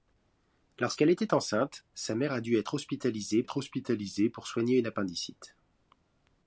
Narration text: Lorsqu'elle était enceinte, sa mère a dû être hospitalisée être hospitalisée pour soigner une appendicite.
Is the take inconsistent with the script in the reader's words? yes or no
no